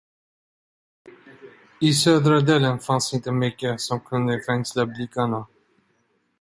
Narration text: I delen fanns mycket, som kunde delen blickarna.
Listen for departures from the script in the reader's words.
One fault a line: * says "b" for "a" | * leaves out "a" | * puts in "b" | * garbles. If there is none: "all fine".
* puts in "södra"
* puts in "inte"
* says "fängsla" for "delen"